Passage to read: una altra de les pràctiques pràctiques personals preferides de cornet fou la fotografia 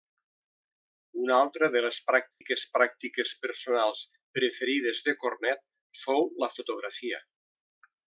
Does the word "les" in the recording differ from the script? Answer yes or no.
no